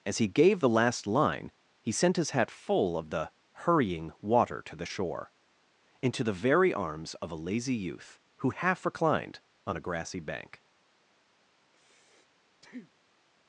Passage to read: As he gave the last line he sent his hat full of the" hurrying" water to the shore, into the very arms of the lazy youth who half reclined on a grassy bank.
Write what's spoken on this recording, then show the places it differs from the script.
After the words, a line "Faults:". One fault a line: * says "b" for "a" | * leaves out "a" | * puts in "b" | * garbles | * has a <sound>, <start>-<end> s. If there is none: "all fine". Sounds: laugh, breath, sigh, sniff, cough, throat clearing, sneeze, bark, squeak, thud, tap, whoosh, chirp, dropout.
As he gave the last line he sent his hat full of the" hurrying" water to the shore, into the very arms of a lazy youth who half reclined on a grassy bank.
Faults:
* says "a" for "the"
* has a breath, 11.6-13.2 s